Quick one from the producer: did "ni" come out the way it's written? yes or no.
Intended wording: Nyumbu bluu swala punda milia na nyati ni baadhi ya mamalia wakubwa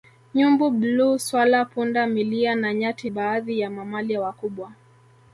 no